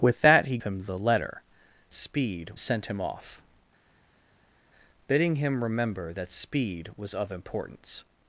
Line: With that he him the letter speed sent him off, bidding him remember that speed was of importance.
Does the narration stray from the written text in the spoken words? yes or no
no